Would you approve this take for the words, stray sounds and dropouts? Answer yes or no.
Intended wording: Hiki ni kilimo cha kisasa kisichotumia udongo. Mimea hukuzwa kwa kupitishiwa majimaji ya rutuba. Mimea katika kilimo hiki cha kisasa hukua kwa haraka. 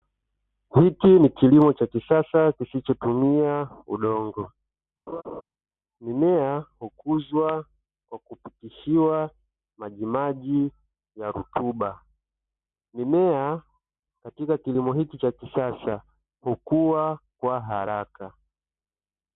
no